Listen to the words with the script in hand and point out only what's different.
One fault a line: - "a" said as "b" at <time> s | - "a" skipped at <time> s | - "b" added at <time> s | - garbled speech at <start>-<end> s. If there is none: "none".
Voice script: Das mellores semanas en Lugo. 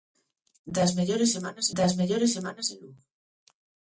- "das mellores semanas" added at 1.8 s